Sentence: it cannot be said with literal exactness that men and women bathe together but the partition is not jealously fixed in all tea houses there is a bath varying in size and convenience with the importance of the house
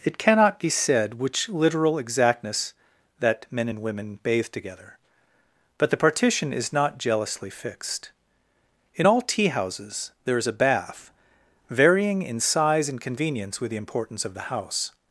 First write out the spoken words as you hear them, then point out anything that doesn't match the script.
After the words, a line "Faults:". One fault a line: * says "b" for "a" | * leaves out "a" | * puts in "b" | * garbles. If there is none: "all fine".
it cannot be said which literal exactness that men and women bathe together but the partition is not jealously fixed in all tea houses there is a bath varying in size and convenience with the importance of the house
Faults:
* says "which" for "with"